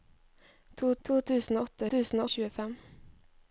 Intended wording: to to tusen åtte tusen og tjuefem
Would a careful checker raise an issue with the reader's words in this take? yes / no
no